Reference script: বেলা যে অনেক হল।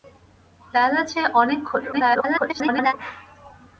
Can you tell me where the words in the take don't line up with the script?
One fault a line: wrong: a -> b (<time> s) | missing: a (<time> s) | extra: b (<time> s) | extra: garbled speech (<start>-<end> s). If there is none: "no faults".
extra: garbled speech (1.9-2.9 s)